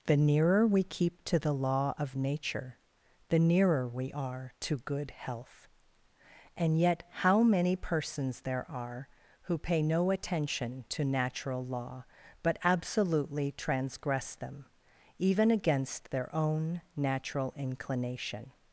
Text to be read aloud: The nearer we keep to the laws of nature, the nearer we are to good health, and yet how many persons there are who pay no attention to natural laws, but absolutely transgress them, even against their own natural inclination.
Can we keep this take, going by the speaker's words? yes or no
no